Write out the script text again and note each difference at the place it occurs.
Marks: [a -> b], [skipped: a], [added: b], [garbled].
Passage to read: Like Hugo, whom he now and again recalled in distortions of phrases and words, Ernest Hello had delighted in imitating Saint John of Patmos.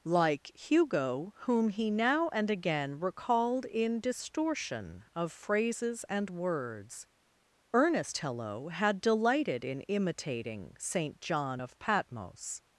Like Hugo, whom he now and again recalled in [distortions -> distortion] of phrases and words, Ernest Hello had delighted in imitating Saint John of Patmos.